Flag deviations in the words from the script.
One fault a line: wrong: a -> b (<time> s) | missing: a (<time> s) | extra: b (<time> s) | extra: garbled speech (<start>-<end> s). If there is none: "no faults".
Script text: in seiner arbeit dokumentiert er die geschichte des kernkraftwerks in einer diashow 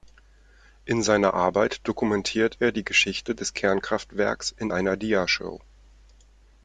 no faults